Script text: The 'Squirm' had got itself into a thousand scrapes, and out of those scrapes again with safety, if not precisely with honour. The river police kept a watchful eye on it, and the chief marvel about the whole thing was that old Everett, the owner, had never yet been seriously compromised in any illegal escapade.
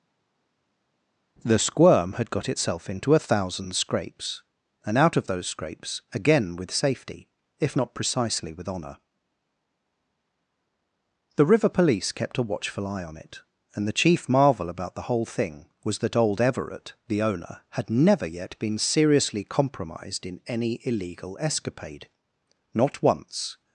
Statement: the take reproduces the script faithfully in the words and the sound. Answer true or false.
false